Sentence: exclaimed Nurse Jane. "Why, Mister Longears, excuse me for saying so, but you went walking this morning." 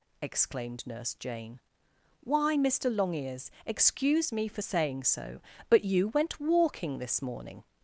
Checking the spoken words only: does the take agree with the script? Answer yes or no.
yes